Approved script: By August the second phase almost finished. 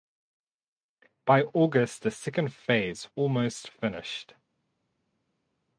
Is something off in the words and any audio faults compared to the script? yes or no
no